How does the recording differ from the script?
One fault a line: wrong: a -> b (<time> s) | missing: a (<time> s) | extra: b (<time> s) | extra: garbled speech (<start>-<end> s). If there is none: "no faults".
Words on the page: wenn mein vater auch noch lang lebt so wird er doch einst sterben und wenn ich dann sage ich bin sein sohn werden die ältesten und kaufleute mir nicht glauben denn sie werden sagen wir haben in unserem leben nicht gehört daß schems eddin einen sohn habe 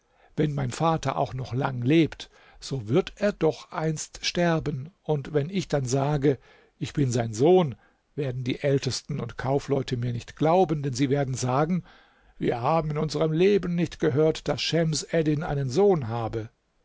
no faults